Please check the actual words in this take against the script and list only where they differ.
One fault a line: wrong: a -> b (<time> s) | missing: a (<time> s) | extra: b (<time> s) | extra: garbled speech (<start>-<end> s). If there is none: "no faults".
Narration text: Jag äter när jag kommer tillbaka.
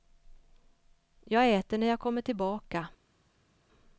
no faults